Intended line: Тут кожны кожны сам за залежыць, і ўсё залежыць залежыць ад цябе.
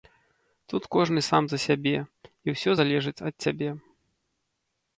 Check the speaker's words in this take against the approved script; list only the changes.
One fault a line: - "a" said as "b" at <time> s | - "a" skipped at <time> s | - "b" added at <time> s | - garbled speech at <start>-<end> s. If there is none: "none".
- "кожны" skipped at 1.2 s
- "залежыць" said as "сябе" at 1.6 s
- "залежыць" skipped at 3.2 s